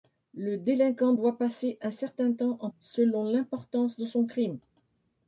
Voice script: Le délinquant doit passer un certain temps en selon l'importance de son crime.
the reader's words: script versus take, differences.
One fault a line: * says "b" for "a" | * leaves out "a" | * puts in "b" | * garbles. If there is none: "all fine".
all fine